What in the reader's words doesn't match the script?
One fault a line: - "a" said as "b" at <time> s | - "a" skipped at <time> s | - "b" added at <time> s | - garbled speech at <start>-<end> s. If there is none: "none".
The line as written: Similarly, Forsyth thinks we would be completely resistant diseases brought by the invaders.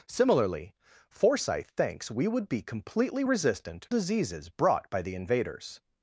none